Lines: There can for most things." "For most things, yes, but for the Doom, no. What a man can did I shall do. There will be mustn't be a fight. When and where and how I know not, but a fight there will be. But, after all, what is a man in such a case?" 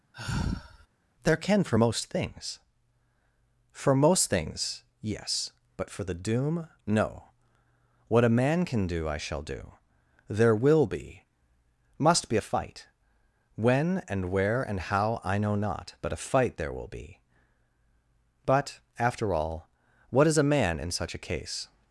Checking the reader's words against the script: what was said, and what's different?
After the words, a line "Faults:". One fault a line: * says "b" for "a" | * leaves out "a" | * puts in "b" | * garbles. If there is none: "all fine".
There can for most things." "For most things, yes, but for the Doom, no. What a man can do I shall do. There will be must be a fight. When and where and how I know not, but a fight there will be. But, after all, what is a man in such a case?"
Faults:
* says "do" for "did"
* says "must" for "mustn't"